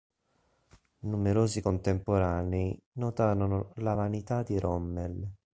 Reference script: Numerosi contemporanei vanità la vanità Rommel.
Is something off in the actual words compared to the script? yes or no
yes